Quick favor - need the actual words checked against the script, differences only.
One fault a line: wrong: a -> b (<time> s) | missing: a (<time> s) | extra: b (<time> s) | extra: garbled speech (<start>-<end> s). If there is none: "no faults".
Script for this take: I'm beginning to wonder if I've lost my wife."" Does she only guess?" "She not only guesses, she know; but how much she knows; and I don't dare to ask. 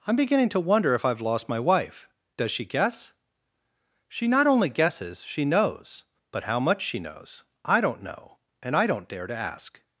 missing: only (2.6 s)
wrong: know -> knows (5.5 s)
extra: I don't know (7.6 s)